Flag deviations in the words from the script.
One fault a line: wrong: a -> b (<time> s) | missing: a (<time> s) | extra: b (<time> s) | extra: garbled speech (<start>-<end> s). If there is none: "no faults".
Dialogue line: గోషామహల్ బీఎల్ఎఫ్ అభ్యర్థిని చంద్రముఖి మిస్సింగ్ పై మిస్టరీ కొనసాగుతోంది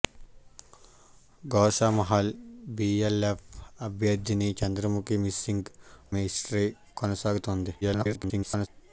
missing: పై (5.7 s)
extra: garbled speech (7.8-8.7 s)